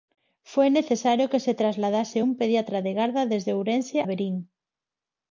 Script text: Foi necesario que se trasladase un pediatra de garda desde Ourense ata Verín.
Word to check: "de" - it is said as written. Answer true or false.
true